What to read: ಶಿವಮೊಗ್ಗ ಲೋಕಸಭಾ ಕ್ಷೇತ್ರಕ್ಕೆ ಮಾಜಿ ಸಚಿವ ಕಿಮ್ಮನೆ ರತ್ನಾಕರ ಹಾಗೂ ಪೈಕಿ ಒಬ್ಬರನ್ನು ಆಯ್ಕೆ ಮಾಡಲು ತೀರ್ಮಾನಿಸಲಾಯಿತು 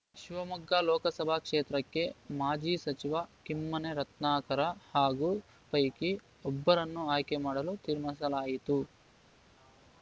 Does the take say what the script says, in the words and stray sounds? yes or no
yes